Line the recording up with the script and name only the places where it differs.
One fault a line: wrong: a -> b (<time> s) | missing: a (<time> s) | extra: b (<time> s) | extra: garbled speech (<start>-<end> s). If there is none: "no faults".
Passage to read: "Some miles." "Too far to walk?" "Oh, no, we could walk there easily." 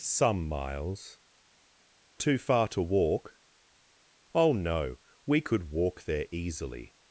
no faults